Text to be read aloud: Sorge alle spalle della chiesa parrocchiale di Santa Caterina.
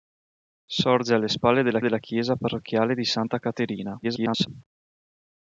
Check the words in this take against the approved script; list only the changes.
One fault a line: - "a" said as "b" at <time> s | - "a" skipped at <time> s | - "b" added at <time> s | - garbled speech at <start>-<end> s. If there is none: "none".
- "della" added at 1.8 s
- garbled speech at 4.0-4.5 s